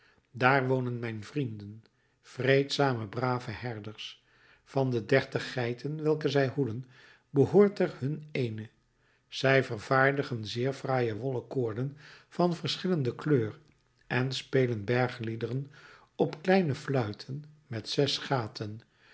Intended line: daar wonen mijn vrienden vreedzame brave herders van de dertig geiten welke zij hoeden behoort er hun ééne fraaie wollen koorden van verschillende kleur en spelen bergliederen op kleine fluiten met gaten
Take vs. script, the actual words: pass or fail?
fail